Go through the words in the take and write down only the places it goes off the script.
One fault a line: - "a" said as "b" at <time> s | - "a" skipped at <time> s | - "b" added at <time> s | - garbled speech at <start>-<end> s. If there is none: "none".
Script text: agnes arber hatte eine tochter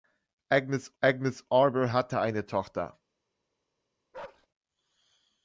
- "agnes" added at 1.0 s